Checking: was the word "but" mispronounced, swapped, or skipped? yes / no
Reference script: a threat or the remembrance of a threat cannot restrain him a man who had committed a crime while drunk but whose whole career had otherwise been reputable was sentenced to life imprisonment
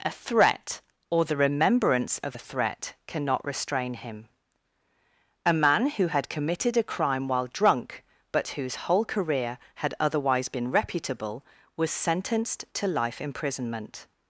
no